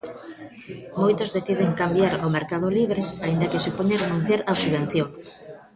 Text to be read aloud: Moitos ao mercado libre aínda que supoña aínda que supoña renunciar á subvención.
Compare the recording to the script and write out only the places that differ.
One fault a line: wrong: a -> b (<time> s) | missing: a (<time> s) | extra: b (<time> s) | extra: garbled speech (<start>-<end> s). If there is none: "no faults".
extra: deciden cambiar (1.4 s)
missing: aínda que supoña (4.0 s)